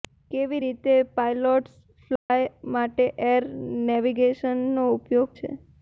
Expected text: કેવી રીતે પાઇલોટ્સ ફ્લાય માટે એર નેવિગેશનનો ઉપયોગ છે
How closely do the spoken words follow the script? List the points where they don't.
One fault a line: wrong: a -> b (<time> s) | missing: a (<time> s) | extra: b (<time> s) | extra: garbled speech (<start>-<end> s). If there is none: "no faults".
no faults